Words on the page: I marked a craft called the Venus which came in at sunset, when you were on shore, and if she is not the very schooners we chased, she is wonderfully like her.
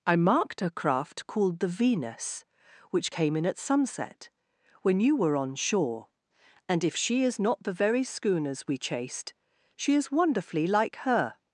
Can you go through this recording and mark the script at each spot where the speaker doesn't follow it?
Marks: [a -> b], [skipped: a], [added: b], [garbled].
I marked a craft called the Venus which came in at sunset, when you were on shore, and if she is not the very schooners we chased, she is wonderfully like her.